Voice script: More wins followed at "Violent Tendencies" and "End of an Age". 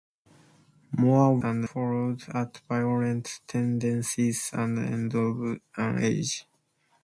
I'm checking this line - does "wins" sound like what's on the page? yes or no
no